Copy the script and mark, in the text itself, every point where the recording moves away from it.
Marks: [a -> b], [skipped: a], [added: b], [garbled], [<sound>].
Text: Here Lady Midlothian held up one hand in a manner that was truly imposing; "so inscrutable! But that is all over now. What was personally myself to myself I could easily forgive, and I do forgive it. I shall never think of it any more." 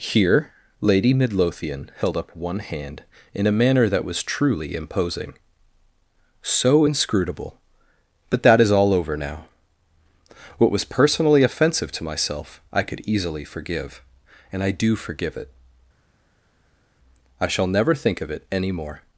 Here Lady Midlothian held up one hand in a manner that was truly imposing; "so inscrutable! But that is all over now. What was personally [myself -> offensive] to myself I could easily forgive, and I do forgive it. I shall never think of it any more."